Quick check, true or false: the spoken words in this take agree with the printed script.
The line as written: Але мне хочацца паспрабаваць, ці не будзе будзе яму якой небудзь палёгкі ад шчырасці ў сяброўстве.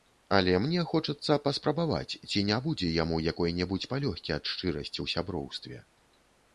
false